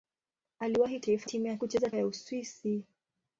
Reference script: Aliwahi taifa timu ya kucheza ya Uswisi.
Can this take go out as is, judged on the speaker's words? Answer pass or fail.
pass